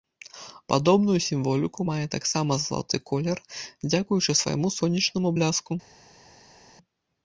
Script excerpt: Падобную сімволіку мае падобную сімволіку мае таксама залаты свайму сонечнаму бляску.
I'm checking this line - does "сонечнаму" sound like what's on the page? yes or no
yes